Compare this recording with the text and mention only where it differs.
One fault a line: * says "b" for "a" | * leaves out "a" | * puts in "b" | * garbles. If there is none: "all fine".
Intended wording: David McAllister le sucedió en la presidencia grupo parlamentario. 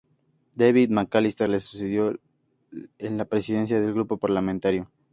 * puts in "del"